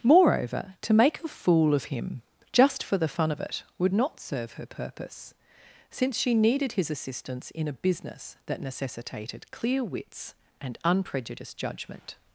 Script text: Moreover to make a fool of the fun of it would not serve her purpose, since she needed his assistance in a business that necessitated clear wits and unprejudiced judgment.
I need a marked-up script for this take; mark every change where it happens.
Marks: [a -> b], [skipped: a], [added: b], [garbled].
Moreover to make a fool of [added: him just for] the fun of it would not serve her purpose, since she needed his assistance in a business that necessitated clear wits and unprejudiced judgment.